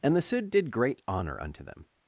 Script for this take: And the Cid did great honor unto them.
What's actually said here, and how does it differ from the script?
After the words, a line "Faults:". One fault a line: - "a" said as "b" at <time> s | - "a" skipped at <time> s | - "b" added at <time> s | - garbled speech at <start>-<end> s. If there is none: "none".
And the Cid did great honor unto them.
Faults:
none